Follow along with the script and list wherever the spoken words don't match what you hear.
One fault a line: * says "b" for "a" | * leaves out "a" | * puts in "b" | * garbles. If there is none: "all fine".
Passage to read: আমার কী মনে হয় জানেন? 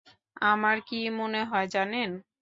all fine